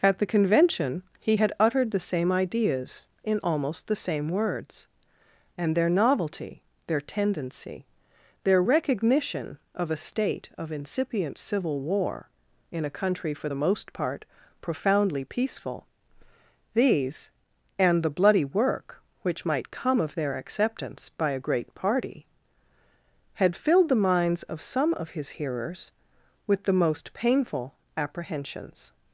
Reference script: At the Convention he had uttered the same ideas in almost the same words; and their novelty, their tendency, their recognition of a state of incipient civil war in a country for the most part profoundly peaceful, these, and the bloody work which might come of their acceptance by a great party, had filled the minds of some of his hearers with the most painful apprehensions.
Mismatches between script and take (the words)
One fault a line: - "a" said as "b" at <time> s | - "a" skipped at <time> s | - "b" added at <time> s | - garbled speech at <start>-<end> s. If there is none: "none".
none